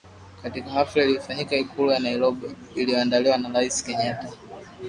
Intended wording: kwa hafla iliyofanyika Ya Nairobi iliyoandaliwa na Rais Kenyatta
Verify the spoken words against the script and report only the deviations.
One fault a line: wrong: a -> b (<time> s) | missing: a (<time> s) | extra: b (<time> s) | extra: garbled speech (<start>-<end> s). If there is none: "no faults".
wrong: kwa -> katika (0.4 s)
extra: Ikulu (1.6 s)